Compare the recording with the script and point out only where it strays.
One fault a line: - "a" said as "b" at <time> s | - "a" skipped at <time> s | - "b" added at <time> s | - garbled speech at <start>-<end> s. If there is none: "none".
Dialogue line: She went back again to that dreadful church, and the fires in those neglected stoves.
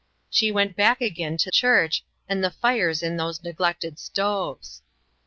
- "that dreadful" skipped at 1.5 s